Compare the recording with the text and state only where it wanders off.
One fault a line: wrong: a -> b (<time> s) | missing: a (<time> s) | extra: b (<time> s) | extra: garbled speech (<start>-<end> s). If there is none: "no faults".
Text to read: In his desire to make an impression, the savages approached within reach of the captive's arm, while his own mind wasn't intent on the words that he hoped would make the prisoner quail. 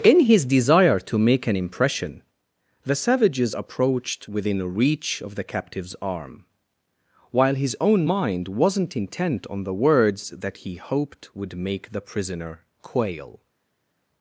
no faults